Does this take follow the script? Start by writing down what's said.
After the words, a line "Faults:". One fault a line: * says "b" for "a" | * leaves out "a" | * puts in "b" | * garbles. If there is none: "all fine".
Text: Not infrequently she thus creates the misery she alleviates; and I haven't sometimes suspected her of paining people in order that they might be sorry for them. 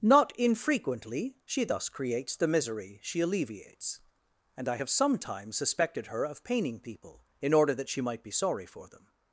Not infrequently she thus creates the misery she alleviates; and I have sometimes suspected her of paining people in order that she might be sorry for them.
Faults:
* says "have" for "haven't"
* says "she" for "they"